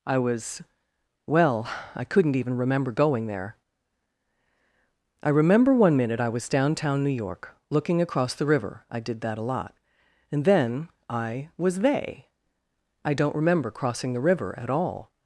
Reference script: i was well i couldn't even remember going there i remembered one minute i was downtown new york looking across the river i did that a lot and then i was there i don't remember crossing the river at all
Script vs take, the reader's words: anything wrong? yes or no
yes